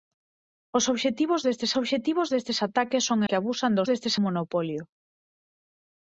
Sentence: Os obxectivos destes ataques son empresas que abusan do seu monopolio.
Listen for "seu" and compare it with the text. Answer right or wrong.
wrong